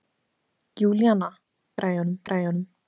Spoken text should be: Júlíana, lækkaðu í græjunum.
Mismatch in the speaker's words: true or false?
true